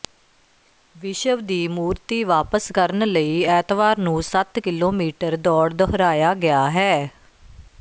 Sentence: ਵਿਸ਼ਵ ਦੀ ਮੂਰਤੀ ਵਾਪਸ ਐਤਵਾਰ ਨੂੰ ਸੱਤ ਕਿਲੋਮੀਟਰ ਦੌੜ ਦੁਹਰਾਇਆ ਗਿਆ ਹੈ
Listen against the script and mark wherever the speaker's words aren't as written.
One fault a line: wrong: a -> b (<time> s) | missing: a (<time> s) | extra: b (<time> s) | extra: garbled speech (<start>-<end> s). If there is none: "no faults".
extra: ਕਰਨ ਲਈ (2.7 s)